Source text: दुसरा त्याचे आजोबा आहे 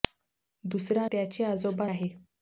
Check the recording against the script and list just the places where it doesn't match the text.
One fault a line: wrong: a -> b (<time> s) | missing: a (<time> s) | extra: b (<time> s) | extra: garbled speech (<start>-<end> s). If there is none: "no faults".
no faults